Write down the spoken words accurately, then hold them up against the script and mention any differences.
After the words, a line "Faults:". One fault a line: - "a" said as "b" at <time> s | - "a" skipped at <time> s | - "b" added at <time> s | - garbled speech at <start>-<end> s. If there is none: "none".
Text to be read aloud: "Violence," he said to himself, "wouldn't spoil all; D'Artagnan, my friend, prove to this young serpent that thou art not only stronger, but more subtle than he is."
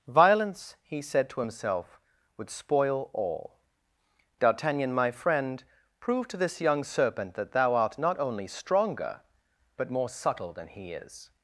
"Violence," he said to himself, "would spoil all; D'Artagnan, my friend, prove to this young serpent that thou art not only stronger, but more subtle than he is."
Faults:
- "wouldn't" said as "would" at 2.4 s